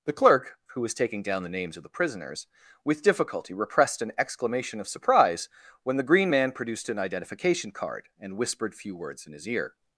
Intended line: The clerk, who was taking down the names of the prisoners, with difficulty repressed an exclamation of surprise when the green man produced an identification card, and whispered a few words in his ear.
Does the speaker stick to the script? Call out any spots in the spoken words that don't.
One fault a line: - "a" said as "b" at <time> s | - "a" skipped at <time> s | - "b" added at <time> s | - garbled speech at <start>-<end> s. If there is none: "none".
- "a" skipped at 8.7 s